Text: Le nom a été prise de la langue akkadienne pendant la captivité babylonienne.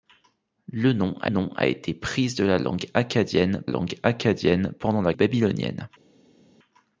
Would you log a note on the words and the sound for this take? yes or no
yes